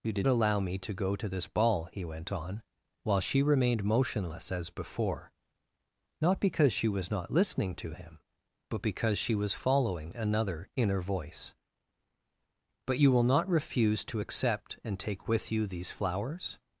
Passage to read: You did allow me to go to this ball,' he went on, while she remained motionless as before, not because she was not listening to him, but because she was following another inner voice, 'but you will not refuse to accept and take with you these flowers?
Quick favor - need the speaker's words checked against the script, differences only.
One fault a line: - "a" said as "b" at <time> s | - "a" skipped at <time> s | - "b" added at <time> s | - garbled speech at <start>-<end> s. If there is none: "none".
none